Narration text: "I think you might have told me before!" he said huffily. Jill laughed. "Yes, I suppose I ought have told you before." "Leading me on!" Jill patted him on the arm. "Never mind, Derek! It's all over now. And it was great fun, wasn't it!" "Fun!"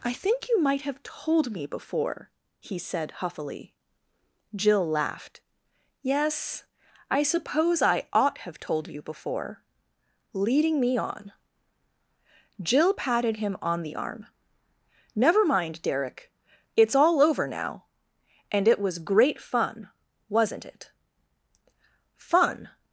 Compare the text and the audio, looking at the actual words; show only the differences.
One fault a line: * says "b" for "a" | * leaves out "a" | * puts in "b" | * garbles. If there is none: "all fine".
all fine